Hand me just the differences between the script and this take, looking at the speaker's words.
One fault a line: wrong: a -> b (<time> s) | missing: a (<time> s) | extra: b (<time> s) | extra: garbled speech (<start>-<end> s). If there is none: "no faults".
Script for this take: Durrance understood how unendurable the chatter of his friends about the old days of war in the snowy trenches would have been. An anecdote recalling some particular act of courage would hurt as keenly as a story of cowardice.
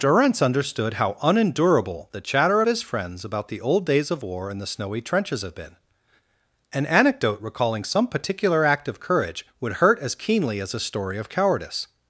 missing: would (5.4 s)